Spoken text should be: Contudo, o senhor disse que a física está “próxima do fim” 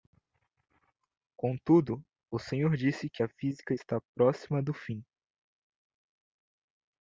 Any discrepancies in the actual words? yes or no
no